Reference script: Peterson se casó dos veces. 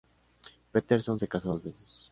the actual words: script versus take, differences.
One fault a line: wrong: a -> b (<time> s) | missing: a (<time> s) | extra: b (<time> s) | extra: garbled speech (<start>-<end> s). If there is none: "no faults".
no faults